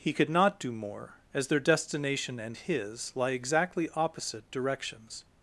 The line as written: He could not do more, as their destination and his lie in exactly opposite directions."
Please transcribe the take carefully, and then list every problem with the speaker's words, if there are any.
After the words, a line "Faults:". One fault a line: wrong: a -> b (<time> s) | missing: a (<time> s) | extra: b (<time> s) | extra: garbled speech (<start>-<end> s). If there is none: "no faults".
He could not do more, as their destination and his lie exactly opposite directions."
Faults:
missing: in (3.3 s)